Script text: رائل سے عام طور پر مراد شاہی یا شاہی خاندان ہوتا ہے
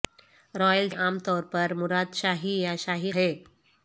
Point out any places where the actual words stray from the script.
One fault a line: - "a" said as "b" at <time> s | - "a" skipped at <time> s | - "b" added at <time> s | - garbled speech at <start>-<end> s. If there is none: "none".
- "سے" skipped at 0.9 s
- "خاندان ہوتا" skipped at 3.1 s